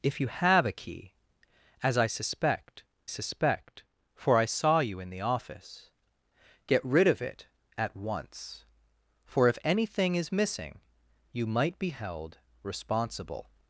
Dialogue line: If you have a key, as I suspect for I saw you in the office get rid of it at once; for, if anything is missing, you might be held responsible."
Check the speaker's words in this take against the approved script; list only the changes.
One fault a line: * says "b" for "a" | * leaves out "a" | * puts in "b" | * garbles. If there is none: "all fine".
* puts in "suspect"